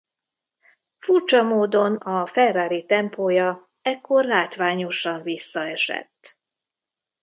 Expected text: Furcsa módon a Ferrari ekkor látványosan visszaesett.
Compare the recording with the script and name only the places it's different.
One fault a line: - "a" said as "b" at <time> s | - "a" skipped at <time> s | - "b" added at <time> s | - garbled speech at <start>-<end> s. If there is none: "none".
- "tempója" added at 2.8 s